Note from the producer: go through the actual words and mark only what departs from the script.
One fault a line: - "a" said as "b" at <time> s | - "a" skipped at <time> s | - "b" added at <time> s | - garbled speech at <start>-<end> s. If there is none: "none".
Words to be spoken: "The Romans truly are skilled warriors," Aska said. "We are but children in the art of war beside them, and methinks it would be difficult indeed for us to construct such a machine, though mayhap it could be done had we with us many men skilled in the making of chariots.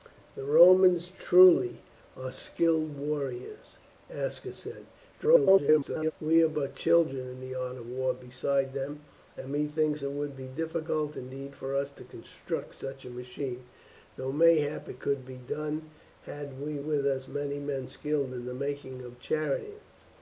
- garbled speech at 5.1-6.1 s